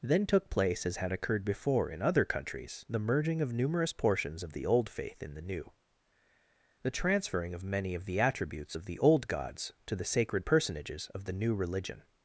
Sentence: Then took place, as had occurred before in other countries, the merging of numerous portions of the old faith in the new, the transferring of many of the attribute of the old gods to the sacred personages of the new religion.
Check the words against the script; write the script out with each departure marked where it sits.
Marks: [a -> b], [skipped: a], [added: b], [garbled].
Then took place, as had occurred before in other countries, the merging of numerous portions of the old faith in the new, the transferring of many of the [attribute -> attributes] of the old gods to the sacred personages of the new religion.